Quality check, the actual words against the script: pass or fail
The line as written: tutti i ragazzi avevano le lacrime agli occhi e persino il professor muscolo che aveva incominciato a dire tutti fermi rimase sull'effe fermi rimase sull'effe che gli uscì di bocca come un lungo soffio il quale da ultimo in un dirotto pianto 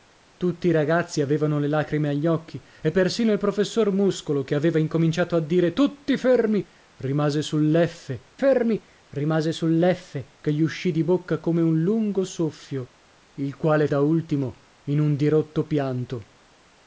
pass